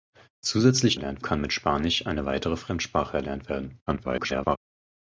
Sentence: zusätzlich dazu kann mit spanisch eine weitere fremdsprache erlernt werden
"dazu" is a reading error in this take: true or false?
true